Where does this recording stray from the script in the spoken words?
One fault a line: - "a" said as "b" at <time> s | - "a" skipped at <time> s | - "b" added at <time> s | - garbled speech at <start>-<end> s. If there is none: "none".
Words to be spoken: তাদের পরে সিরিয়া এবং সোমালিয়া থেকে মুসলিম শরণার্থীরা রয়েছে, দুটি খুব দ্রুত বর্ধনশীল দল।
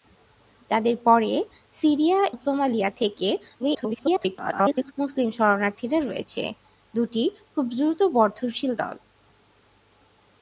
- "এবং" skipped at 2.2 s
- garbled speech at 3.6-4.9 s